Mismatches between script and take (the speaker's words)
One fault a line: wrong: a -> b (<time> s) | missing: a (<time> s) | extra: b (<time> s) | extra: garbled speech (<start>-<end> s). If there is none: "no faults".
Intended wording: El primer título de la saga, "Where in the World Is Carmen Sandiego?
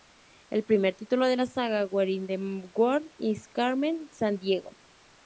no faults